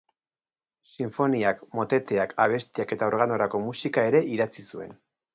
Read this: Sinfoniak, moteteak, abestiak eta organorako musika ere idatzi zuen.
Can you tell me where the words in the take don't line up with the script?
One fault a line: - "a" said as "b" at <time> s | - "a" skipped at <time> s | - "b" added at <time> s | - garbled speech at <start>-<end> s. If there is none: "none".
none